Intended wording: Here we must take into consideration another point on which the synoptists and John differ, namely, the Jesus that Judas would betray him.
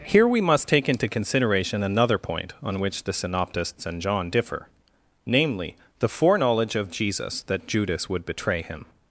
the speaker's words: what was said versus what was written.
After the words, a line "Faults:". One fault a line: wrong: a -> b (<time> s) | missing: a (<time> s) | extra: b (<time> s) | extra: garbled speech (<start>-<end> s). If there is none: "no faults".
Here we must take into consideration another point on which the synoptists and John differ, namely, the foreknowledge of Jesus that Judas would betray him.
Faults:
extra: foreknowledge of (6.1 s)